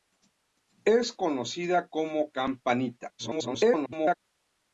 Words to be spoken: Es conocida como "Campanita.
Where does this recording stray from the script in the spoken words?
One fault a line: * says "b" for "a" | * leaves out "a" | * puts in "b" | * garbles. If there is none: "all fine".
* garbles